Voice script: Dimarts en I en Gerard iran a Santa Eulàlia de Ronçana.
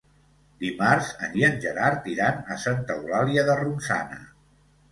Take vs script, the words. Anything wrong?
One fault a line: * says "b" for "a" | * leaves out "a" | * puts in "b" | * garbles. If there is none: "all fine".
all fine